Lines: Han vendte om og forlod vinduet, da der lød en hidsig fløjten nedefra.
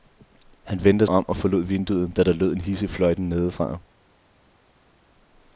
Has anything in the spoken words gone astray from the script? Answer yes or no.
no